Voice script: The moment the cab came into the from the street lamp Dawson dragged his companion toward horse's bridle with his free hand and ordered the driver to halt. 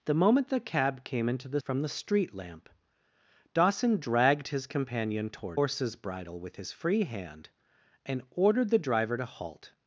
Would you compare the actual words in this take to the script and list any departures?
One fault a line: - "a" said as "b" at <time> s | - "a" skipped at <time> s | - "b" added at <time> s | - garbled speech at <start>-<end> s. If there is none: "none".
none